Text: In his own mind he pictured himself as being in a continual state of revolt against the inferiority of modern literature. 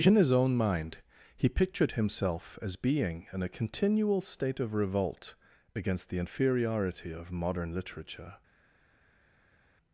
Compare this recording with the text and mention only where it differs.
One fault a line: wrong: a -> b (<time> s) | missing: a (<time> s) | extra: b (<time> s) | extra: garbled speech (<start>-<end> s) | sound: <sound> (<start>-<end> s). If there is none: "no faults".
no faults